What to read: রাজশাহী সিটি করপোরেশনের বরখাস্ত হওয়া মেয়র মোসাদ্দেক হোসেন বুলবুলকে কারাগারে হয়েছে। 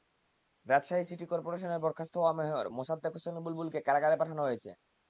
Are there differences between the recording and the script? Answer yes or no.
yes